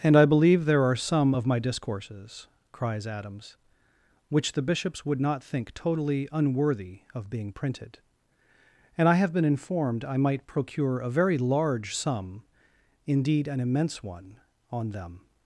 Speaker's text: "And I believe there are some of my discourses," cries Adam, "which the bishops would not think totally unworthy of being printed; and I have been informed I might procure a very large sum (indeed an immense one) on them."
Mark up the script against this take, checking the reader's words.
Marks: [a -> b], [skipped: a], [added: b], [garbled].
"And I believe there are some of my discourses," cries [Adam, -> Adams] "which the bishops would not think totally unworthy of being printed; and I have been informed I might procure a very large sum (indeed an immense one) on them."